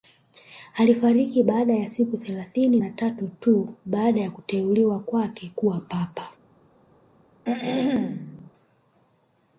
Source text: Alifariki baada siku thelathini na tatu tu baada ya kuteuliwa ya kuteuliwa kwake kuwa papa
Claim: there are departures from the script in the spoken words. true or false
true